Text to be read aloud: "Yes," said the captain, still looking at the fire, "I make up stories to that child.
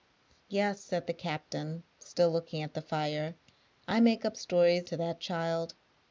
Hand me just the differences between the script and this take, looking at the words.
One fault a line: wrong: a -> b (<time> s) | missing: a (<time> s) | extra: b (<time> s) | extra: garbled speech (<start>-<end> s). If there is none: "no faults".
no faults